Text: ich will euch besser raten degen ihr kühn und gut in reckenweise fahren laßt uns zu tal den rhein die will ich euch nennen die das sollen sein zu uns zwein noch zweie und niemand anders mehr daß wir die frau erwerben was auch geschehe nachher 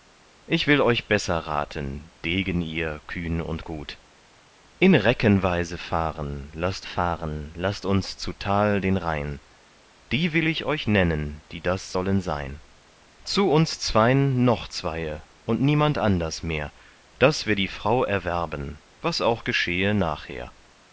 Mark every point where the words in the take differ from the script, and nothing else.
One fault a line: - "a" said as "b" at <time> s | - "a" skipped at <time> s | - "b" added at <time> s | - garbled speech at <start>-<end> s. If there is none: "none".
- "fahren laßt" added at 6.8 s